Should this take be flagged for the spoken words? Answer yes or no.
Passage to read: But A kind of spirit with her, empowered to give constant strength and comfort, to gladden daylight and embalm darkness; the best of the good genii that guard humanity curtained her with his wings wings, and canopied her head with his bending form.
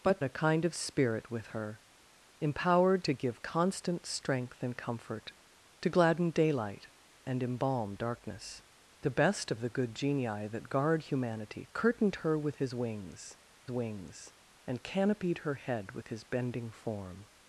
no